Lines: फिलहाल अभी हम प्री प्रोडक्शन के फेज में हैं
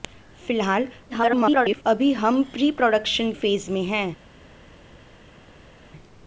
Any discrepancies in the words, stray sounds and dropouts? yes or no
yes